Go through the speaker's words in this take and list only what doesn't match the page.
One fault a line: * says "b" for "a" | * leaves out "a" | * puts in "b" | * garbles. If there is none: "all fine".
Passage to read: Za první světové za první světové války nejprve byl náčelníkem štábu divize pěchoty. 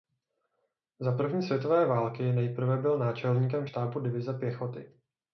* leaves out "za první světové"